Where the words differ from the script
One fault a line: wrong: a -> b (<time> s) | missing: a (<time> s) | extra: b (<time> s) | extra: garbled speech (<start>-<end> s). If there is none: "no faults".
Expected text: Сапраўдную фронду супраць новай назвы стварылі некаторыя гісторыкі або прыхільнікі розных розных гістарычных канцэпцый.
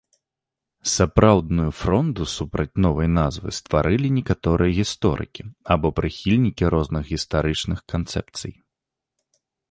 missing: розных (7.0 s)